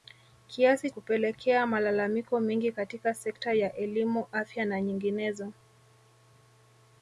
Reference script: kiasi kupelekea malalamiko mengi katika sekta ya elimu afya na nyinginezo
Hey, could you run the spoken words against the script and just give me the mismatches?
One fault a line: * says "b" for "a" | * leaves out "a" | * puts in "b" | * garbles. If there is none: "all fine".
all fine